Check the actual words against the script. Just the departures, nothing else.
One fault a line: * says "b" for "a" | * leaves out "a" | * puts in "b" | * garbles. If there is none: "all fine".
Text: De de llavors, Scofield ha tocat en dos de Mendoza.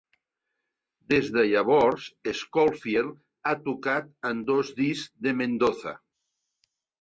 * says "Des" for "De"
* puts in "discs"